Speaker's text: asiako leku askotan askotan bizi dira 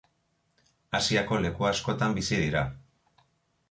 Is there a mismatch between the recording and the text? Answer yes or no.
yes